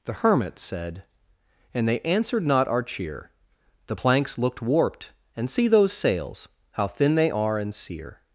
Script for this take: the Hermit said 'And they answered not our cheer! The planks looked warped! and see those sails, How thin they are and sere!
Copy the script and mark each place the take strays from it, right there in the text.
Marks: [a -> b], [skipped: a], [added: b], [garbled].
the Hermit said 'And they answered not our cheer! The planks looked warped! and see those sails, How thin they are and sere!